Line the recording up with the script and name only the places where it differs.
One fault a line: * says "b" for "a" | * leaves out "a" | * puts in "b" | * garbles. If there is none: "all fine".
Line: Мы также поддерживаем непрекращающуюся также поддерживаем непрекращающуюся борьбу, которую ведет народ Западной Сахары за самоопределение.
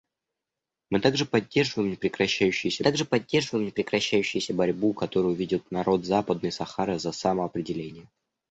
all fine